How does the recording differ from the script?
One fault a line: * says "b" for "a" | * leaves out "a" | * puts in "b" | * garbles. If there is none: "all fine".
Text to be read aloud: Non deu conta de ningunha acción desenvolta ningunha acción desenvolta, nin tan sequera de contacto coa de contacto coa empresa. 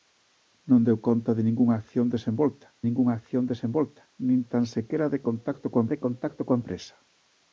all fine